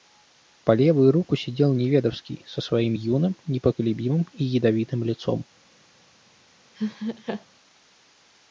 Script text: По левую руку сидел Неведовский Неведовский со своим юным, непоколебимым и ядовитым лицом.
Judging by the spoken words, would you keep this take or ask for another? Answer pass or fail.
fail